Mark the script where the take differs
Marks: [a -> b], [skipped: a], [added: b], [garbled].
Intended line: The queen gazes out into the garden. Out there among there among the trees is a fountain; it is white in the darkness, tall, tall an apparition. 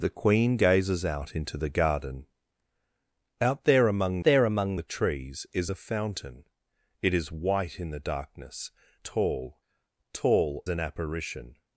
The queen gazes out into the garden. Out there among there among the trees is a fountain; it is white in the darkness, tall, tall an apparition.